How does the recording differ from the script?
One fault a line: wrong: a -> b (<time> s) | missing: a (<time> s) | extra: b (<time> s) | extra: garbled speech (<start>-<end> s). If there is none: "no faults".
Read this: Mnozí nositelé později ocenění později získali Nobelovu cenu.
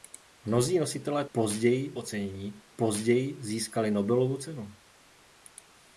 no faults